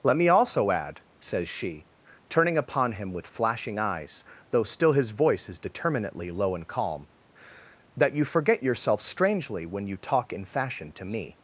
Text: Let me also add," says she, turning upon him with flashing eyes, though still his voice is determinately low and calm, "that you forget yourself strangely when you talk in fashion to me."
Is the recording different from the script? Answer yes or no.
no